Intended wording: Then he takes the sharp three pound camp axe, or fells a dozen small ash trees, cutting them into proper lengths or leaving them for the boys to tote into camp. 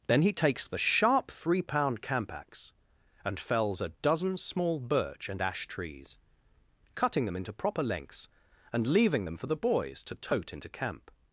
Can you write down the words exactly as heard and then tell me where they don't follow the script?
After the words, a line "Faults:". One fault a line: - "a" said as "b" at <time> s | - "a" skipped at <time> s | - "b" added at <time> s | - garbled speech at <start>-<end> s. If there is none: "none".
Then he takes the sharp three pound camp axe, and fells a dozen small birch and ash trees, cutting them into proper lengths and leaving them for the boys to tote into camp.
Faults:
- "or" said as "and" at 3.2 s
- "birch and" added at 4.8 s
- "or" said as "and" at 8.7 s